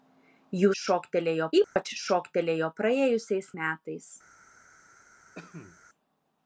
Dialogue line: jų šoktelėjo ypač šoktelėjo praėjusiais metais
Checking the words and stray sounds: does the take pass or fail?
fail